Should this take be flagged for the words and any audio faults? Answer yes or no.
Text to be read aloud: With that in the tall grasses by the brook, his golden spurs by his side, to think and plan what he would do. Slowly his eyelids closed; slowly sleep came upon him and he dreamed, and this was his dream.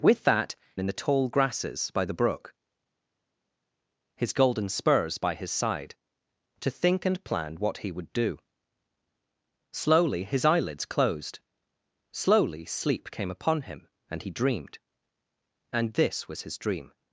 no